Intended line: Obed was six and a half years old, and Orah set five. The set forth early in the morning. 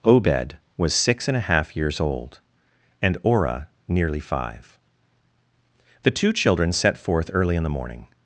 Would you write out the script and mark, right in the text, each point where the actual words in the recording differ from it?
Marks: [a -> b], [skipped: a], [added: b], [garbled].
Obed was six and a half years old, and Orah [set -> nearly] five. The [added: two children] set forth early in the morning.